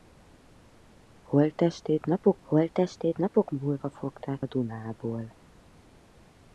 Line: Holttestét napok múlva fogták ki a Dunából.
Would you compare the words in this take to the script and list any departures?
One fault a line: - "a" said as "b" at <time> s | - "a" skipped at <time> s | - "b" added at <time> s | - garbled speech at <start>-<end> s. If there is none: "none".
- "holttestét napok" added at 2.4 s
- "ki" skipped at 4.4 s